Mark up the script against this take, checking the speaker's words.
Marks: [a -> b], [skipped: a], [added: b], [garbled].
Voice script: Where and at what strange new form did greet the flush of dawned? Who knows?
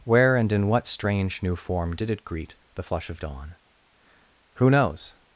Where and [at -> in] what strange new form did [added: it] greet the flush of [dawned? -> dawn] Who knows?